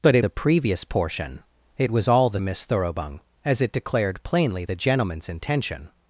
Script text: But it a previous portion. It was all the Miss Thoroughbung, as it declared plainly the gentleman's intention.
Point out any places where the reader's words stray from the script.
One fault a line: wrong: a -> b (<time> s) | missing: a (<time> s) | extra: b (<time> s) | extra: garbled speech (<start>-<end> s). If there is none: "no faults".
no faults